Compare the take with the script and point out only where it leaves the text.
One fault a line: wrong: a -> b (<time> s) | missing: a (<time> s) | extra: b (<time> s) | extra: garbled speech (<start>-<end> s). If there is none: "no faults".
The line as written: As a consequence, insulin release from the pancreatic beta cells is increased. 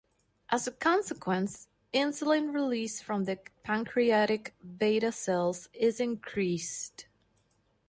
no faults